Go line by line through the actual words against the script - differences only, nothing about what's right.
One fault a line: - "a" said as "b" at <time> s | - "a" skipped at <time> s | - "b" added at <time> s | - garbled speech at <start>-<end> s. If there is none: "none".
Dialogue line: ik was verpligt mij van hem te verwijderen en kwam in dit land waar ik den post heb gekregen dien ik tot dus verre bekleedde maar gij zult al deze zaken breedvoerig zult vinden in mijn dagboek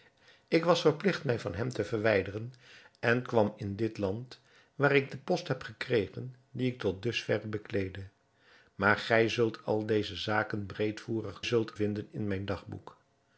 none